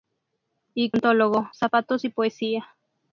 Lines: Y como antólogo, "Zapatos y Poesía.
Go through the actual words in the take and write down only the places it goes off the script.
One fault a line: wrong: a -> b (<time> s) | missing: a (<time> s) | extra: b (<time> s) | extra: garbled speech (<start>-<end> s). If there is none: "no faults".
missing: como (0.9 s)